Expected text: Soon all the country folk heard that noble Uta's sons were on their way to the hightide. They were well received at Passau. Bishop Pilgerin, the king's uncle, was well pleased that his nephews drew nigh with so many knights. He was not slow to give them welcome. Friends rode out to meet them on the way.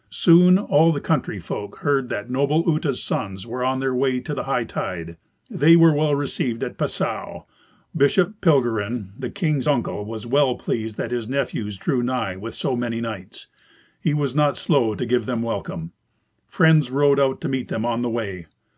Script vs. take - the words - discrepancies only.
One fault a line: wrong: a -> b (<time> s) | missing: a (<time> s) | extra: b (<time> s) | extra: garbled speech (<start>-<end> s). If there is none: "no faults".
no faults